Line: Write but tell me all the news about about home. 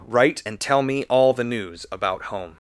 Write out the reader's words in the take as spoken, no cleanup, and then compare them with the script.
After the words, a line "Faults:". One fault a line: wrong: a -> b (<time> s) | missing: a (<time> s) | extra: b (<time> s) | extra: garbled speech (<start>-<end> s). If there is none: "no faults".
Write and tell me all the news about home.
Faults:
wrong: but -> and (0.4 s)
missing: about (2.2 s)